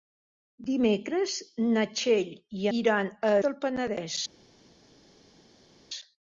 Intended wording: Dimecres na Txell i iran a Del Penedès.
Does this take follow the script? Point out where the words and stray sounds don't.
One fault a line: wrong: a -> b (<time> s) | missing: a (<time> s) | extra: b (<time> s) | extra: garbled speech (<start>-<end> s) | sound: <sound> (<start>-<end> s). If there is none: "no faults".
no faults